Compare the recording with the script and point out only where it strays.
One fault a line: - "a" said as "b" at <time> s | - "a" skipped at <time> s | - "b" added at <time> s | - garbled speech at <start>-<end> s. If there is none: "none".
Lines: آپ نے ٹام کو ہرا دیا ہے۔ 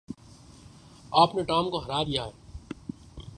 none